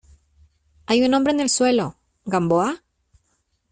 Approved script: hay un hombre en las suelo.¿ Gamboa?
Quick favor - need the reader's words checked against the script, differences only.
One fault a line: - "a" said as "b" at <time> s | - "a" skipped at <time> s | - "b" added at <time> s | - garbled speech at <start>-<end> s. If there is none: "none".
- "las" said as "el" at 1.4 s